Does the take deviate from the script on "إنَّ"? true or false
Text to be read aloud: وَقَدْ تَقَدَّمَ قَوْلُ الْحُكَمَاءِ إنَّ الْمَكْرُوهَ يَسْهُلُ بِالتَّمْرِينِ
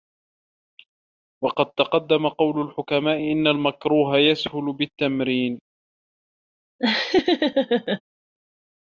false